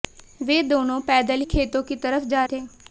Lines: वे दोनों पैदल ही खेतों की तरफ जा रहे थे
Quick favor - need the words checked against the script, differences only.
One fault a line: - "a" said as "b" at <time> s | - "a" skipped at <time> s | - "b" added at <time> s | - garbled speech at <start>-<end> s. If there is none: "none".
- "ही" skipped at 1.4 s
- "रहे" skipped at 2.4 s